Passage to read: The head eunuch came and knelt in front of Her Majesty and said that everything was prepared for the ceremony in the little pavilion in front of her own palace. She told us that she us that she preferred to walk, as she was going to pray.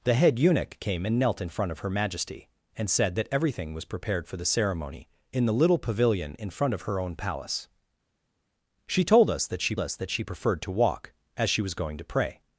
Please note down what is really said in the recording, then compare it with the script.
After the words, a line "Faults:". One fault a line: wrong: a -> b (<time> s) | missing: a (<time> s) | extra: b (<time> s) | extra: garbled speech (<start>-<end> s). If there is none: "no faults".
The head eunuch came and knelt in front of Her Majesty and said that everything was prepared for the ceremony in the little pavilion in front of her own palace. She told us that she us that she preferred to walk, as she was going to pray.
Faults:
no faults